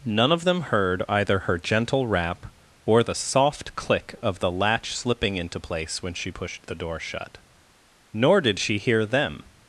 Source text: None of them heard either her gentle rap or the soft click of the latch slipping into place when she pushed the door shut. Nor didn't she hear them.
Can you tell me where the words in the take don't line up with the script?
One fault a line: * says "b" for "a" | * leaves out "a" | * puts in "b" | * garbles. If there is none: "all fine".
* says "did" for "didn't"